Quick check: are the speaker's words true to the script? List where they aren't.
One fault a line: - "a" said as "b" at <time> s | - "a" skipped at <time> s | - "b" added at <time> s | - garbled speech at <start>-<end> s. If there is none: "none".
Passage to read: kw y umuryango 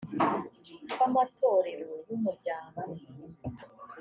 - "amatorero" added at 1.0 s